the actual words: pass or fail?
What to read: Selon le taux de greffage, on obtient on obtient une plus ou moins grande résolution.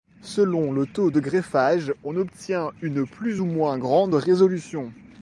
fail